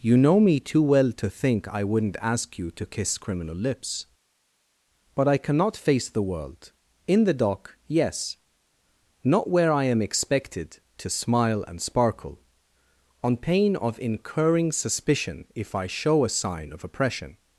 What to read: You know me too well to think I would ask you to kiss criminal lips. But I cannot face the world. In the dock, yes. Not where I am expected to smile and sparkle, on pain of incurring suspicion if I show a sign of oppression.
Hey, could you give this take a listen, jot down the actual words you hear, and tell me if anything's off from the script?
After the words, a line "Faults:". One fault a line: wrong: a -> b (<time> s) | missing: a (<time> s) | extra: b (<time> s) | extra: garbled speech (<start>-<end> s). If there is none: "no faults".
You know me too well to think I wouldn't ask you to kiss criminal lips. But I cannot face the world. In the dock, yes. Not where I am expected to smile and sparkle, on pain of incurring suspicion if I show a sign of oppression.
Faults:
wrong: would -> wouldn't (1.8 s)